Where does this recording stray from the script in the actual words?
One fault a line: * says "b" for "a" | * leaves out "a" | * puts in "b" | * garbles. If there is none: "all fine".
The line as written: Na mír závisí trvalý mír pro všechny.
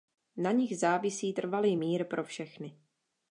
* says "nich" for "mír"